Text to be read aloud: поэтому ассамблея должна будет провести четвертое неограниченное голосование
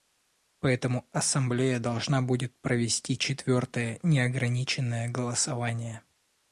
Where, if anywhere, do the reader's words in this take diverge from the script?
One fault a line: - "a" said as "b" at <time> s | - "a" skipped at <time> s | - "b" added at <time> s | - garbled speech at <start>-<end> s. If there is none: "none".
none